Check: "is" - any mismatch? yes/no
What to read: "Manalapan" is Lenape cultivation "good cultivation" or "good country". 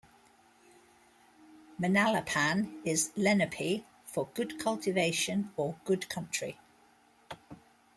no